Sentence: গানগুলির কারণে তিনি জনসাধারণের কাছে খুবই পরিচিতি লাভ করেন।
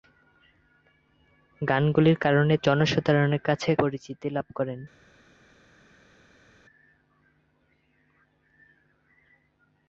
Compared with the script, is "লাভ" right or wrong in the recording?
right